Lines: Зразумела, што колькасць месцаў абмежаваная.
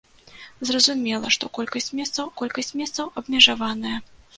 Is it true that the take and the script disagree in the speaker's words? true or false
true